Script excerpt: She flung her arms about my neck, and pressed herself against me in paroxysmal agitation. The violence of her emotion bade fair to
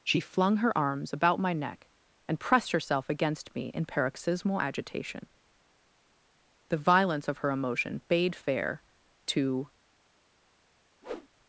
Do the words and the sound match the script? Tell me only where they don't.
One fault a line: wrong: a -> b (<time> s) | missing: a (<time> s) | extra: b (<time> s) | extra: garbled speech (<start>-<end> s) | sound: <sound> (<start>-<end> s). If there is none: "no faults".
sound: whoosh (11.0-11.3 s)